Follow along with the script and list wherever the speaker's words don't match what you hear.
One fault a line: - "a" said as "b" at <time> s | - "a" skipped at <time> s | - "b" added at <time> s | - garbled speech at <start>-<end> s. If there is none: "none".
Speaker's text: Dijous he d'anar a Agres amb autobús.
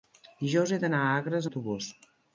- "amb" skipped at 1.5 s